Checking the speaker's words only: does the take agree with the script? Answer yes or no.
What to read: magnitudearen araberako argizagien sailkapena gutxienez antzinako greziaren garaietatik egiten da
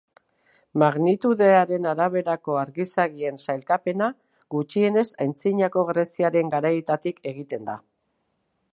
yes